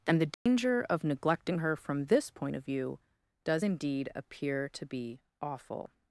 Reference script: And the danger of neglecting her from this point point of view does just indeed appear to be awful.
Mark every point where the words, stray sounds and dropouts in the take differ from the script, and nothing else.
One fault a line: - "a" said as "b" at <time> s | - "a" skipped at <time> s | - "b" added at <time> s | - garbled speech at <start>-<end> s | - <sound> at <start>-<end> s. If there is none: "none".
- dropout at 0.3-0.5 s
- "point" skipped at 2.5 s
- "just" skipped at 3.6 s